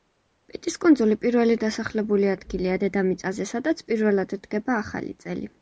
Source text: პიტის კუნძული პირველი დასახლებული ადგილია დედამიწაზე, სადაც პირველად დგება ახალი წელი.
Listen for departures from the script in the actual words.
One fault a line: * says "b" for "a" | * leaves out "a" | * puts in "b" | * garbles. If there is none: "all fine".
all fine